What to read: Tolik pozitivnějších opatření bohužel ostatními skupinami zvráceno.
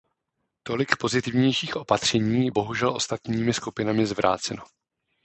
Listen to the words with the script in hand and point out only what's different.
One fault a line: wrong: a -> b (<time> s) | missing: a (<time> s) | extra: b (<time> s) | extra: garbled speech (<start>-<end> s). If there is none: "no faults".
no faults